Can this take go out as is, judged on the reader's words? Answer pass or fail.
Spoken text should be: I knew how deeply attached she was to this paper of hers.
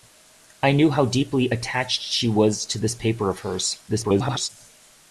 fail